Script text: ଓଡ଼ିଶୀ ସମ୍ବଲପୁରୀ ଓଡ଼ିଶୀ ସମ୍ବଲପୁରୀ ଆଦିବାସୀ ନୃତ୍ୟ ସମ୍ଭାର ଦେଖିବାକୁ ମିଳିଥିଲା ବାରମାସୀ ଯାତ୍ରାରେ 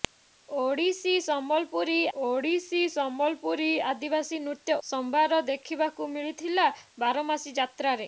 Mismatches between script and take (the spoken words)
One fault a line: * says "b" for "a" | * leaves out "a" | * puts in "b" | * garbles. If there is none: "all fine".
all fine